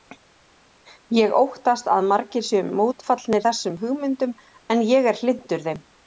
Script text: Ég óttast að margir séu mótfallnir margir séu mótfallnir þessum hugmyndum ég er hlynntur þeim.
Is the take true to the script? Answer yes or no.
no